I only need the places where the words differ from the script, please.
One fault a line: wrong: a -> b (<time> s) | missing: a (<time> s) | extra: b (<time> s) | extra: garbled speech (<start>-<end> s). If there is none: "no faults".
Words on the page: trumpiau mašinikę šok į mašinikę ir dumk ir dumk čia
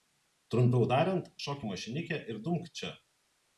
wrong: mašinikę -> tariant (0.9 s)
missing: ir dumk (2.7 s)